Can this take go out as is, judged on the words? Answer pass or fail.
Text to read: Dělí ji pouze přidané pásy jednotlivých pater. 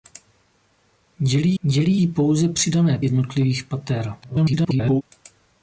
fail